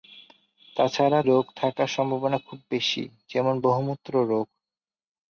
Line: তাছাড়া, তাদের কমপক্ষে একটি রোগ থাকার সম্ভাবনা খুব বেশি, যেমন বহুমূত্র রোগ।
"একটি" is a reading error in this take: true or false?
true